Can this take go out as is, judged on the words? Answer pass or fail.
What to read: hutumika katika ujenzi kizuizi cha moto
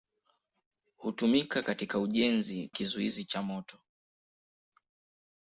pass